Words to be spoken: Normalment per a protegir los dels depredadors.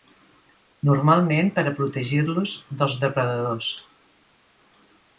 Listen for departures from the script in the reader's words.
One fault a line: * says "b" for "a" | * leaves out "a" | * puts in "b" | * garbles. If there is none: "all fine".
all fine